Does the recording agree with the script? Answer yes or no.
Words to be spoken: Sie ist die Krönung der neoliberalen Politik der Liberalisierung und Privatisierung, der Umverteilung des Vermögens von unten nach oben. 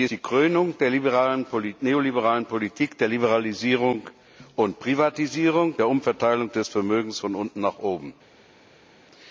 no